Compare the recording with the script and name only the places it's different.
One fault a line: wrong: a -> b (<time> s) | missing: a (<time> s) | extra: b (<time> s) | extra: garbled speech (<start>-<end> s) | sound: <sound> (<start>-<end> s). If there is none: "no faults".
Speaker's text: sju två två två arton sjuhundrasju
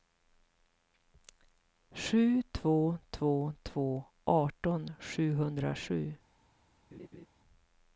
sound: laugh (6.9-7.3 s)